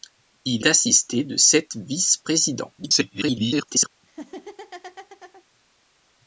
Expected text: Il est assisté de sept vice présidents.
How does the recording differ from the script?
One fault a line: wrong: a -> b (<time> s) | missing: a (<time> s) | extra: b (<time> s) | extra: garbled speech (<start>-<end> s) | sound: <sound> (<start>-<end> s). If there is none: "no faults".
missing: est (0.7 s)
extra: garbled speech (2.8-3.9 s)
sound: laugh (4.0-5.4 s)